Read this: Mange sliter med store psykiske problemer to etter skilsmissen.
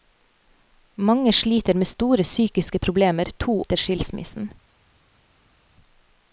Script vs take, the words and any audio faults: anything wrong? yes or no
no